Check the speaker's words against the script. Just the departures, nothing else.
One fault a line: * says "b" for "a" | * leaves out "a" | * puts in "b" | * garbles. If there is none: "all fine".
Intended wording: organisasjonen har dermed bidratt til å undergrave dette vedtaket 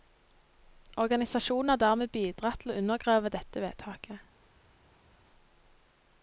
all fine